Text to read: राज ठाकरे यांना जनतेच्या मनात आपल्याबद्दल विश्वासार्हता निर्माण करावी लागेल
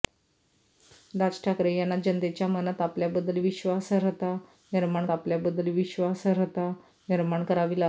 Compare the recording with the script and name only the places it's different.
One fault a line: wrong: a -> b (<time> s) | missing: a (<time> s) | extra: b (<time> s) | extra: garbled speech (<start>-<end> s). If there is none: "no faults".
extra: आपल्याबद्दल विश्वासार्हता निर्माण (5.1 s)